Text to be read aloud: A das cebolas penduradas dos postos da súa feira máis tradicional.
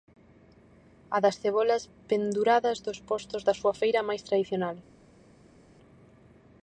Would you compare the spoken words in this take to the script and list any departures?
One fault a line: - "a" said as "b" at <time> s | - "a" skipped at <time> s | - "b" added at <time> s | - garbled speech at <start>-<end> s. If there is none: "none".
none